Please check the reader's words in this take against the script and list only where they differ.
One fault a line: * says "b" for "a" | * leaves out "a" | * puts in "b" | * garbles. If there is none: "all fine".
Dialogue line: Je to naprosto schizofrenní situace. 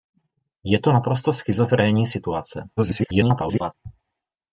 * garbles